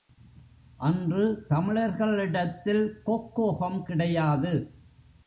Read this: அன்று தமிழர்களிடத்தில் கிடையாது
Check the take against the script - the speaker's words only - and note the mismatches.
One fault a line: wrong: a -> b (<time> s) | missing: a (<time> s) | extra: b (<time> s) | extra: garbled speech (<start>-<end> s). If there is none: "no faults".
extra: கொக்கோகம் (3.0 s)